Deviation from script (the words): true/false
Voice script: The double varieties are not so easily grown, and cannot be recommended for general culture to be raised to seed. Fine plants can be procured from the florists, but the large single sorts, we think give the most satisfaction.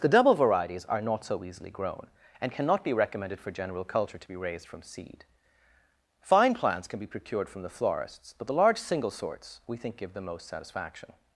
true